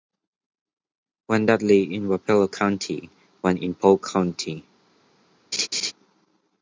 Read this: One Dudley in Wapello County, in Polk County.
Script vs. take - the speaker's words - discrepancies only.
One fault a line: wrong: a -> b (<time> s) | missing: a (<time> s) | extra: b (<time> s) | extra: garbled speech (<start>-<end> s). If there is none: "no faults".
extra: one (3.4 s)